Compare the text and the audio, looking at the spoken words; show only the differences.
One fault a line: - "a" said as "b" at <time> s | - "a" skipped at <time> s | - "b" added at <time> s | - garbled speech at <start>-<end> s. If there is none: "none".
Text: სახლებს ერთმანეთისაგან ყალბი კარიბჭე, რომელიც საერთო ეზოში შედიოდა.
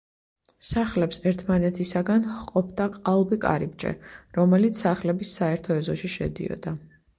- "ჰყოფდა" added at 2.4 s
- "სახლების" added at 4.9 s